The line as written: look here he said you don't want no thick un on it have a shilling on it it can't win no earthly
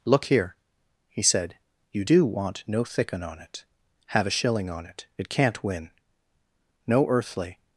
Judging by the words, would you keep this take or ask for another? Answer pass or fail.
fail